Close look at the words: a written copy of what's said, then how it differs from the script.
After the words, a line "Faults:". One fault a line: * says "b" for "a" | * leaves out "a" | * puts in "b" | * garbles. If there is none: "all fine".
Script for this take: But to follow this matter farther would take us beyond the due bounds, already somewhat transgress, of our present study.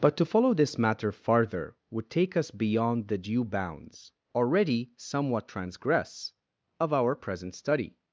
But to follow this matter farther would take us beyond the due bounds, already somewhat transgress, of our present study.
Faults:
all fine